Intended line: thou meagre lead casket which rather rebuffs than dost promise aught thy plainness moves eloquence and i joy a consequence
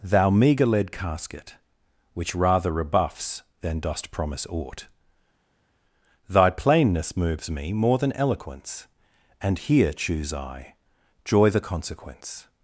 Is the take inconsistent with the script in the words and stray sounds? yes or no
yes